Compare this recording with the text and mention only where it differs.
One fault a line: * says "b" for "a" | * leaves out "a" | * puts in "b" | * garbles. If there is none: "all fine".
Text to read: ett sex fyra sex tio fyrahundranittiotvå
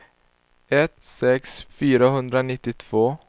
* leaves out "fyra sex tio"